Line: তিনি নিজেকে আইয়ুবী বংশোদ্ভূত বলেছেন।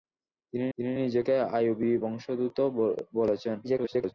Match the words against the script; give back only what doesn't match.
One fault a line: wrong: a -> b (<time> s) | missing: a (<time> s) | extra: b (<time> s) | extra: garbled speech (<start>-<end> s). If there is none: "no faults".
extra: তিনি (0.8 s)
extra: garbled speech (3.6-4.1 s)